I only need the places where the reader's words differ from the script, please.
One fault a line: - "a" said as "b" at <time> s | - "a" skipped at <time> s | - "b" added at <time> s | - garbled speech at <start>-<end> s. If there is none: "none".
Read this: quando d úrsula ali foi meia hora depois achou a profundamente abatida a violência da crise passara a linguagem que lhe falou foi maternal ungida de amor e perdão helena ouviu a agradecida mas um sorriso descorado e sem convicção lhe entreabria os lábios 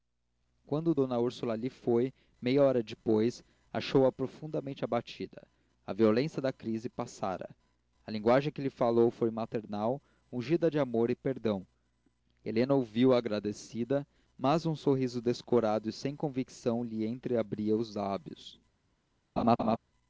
none